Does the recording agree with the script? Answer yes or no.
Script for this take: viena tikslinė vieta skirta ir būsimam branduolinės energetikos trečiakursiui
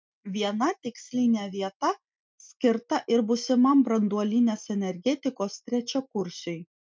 yes